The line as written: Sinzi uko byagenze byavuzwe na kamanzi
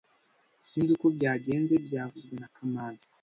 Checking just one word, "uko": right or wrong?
right